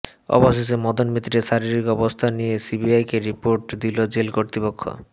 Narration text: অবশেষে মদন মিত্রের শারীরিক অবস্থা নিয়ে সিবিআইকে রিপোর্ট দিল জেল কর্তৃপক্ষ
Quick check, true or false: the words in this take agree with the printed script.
true